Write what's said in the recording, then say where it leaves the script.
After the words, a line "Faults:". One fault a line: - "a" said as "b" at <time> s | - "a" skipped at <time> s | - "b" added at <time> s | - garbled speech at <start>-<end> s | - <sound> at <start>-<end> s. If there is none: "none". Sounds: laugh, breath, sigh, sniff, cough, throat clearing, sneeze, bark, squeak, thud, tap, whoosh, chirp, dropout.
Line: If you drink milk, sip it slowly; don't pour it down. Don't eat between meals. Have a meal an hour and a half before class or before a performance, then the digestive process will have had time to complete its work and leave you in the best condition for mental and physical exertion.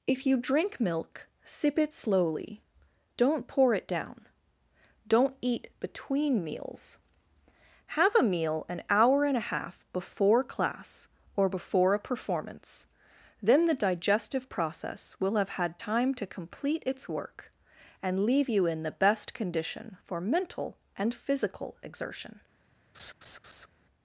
If you drink milk, sip it slowly; don't pour it down. Don't eat between meals. Have a meal an hour and a half before class or before a performance, then the digestive process will have had time to complete its work and leave you in the best condition for mental and physical exertion.
Faults:
- laugh at 22.9-23.7 s